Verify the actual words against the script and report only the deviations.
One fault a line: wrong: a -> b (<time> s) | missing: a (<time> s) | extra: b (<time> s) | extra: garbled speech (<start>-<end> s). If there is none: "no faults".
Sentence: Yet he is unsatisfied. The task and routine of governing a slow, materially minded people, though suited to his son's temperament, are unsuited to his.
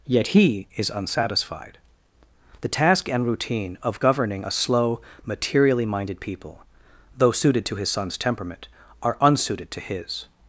no faults